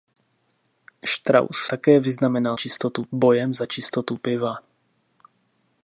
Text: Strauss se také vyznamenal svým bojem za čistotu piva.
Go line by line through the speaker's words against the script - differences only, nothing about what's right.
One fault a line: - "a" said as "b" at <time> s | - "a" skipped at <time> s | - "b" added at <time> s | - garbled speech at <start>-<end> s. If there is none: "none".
- "se" skipped at 1.6 s
- "svým" said as "čistotu" at 2.5 s